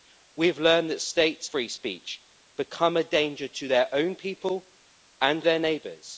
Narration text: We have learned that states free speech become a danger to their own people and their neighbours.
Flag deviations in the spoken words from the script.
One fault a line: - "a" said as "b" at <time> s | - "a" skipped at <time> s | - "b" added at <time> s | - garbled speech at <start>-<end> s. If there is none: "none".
none